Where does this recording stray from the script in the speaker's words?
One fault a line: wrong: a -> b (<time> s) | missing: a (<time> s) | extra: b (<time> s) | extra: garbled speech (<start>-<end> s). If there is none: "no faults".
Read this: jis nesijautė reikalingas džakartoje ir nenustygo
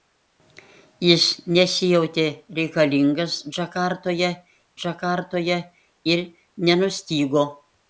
extra: džakartoje (4.8 s)